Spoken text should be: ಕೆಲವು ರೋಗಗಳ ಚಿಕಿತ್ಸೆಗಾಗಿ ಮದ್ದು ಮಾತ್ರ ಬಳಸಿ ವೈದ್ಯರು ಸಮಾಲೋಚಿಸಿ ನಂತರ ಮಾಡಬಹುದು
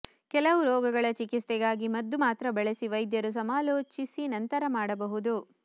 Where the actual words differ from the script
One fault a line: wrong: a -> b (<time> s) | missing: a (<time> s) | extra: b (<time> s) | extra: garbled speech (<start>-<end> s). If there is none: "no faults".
no faults